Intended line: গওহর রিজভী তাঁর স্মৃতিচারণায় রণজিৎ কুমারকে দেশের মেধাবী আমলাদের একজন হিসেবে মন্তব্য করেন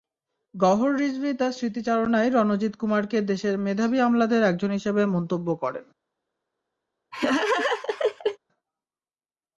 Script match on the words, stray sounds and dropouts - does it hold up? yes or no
no